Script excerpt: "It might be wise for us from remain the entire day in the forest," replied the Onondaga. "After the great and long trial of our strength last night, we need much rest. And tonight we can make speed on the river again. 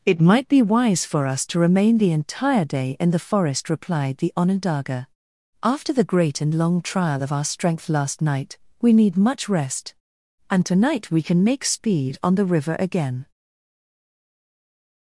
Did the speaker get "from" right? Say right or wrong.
wrong